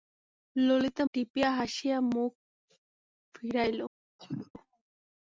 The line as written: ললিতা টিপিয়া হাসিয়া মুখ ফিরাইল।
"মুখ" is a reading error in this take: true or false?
false